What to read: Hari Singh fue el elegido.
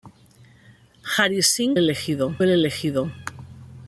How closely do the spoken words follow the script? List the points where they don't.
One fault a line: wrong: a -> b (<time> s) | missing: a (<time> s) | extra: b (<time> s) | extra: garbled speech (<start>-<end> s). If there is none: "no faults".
wrong: fue -> elegido (1.7 s)